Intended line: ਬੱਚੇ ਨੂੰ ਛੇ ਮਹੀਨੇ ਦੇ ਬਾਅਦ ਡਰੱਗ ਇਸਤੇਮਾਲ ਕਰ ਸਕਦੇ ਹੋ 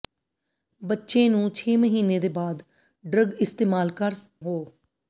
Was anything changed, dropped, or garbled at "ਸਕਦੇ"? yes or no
yes